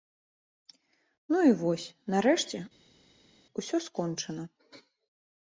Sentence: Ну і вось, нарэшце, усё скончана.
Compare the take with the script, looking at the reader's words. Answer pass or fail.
pass